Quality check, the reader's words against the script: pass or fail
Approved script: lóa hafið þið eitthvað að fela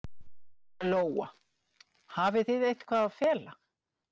pass